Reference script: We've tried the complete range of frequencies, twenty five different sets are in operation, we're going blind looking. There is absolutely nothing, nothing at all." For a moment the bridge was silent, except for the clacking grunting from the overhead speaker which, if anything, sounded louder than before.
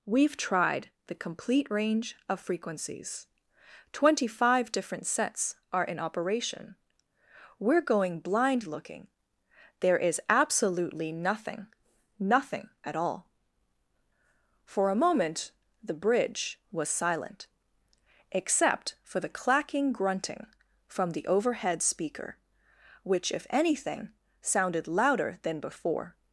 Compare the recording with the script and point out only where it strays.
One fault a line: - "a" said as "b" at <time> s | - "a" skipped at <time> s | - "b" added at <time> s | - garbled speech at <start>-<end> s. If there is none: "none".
none